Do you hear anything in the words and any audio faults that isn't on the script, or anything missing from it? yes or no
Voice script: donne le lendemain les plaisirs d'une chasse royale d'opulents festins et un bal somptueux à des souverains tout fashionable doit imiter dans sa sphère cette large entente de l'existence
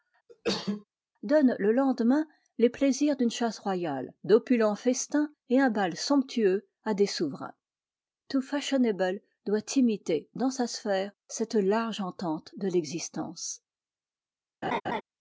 yes